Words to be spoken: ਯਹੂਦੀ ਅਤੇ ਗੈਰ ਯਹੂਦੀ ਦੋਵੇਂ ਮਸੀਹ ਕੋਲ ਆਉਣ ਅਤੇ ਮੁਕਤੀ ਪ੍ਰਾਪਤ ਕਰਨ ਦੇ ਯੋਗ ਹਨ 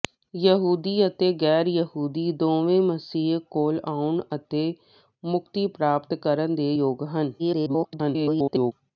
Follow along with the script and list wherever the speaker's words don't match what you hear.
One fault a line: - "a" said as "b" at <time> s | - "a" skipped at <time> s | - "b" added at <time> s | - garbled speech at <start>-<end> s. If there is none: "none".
- garbled speech at 7.4-8.7 s